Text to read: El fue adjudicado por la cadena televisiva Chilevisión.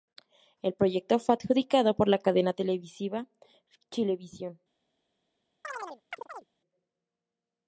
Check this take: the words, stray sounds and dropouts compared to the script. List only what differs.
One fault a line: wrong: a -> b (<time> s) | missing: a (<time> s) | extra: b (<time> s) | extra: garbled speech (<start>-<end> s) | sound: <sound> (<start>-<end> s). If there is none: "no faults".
extra: proyecto (0.7 s)
sound: chirp (5.6-6.4 s)